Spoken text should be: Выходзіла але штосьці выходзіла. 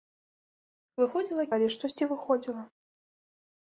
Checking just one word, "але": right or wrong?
right